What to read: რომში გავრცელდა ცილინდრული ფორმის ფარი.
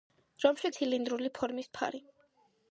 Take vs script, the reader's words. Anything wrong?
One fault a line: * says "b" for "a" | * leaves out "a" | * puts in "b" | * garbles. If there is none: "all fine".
* leaves out "გავრცელდა"